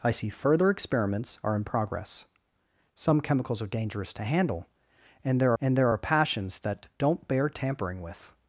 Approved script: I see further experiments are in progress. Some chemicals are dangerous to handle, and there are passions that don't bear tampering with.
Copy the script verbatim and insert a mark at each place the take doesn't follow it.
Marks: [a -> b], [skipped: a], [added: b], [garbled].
I see further experiments are in progress. Some chemicals are dangerous to handle, and there [added: and there] are passions that don't bear tampering with.